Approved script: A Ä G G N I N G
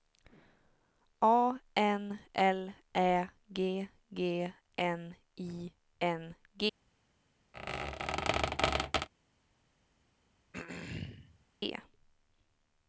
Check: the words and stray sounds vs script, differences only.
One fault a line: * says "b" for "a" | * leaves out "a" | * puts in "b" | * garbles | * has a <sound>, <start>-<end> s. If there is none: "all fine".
* puts in "N L"
* has a squeak, 7.5-9.1 s
* has a throat clearing, 10.5-11.5 s